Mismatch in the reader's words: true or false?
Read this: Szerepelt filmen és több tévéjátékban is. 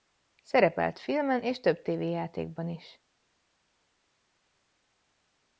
false